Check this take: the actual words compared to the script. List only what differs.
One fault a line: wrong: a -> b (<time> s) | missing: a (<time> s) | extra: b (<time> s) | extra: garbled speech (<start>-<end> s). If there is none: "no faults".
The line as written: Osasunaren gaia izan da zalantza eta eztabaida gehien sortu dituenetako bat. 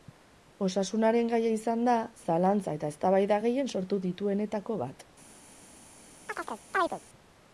no faults